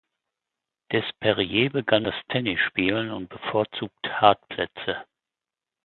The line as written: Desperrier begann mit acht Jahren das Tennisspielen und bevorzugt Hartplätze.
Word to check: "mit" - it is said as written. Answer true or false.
false